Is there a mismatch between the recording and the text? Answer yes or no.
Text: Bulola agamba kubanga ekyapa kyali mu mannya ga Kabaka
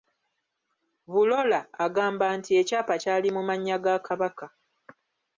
yes